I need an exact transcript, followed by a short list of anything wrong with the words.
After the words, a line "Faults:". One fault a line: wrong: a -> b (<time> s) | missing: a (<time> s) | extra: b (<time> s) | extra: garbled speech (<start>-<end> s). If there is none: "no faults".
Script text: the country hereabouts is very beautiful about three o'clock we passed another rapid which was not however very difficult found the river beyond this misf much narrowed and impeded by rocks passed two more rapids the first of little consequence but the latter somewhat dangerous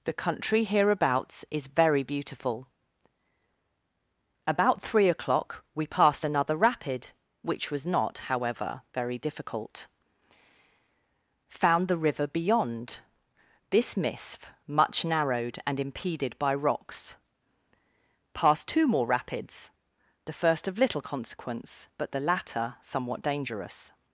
the country hereabouts is very beautiful about three o'clock we passed another rapid which was not however very difficult found the river beyond this misf much narrowed and impeded by rocks passed two more rapids the first of little consequence but the latter somewhat dangerous
Faults:
no faults